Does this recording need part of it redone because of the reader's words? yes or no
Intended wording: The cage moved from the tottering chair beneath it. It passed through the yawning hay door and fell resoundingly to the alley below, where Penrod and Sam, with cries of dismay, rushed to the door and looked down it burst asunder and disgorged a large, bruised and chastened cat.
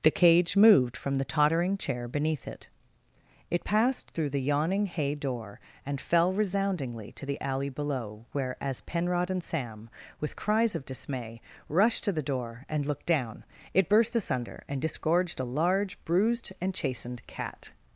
yes